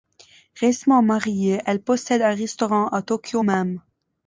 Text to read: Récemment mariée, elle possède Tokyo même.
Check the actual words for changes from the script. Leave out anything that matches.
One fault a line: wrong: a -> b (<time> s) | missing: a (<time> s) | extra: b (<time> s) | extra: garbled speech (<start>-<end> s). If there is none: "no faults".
extra: un restaurant à (2.2 s)